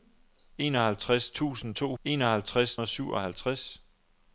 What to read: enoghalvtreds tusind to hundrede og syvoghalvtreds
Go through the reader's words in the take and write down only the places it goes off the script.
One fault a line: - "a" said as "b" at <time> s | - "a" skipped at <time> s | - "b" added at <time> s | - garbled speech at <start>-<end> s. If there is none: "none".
- "hundrede" said as "enoghalvtreds" at 2.0 s